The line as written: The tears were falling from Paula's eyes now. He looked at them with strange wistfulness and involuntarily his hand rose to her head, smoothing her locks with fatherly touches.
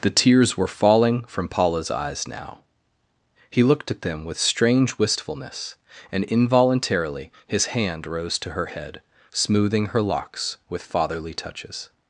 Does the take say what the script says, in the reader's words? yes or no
yes